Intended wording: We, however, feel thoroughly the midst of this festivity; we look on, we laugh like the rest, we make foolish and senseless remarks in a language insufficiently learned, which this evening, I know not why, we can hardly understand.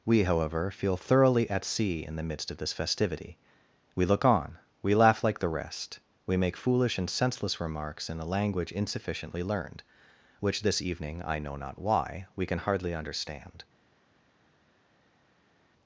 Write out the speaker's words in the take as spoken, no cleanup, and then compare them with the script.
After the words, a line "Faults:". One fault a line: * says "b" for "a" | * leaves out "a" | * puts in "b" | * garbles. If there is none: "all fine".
We, however, feel thoroughly at sea in the midst of this festivity; we look on, we laugh like the rest, we make foolish and senseless remarks in a language insufficiently learned, which this evening, I know not why, we can hardly understand.
Faults:
* puts in "at sea in"